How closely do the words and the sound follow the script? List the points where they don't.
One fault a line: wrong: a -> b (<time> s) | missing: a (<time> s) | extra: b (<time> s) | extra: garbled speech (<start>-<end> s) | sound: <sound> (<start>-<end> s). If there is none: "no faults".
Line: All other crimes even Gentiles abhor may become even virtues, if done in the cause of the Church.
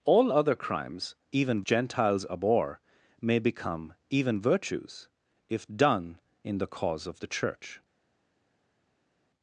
no faults